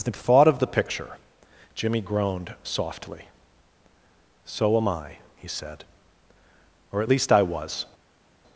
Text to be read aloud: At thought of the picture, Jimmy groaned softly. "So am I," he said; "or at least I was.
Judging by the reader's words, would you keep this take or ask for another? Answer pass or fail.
fail